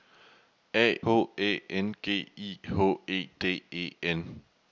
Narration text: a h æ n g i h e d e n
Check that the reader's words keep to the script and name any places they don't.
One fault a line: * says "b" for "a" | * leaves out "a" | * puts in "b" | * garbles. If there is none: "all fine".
all fine